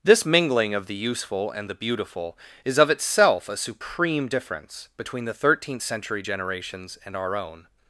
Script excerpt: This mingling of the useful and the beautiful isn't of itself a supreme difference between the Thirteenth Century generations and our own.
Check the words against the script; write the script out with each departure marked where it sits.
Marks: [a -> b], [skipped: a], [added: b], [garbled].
This mingling of the useful and the beautiful [isn't -> is] of itself a supreme difference between the Thirteenth Century generations and our own.